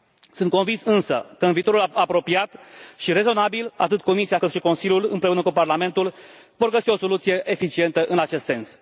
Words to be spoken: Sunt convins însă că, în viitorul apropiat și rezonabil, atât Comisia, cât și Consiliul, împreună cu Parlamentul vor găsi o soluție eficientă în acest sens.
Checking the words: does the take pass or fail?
pass